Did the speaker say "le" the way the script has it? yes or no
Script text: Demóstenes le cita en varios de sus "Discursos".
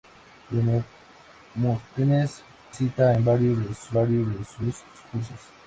no